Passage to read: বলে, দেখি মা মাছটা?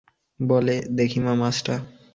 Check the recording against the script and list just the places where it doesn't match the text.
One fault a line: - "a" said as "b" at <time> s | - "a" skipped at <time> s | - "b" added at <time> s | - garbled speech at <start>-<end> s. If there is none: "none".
none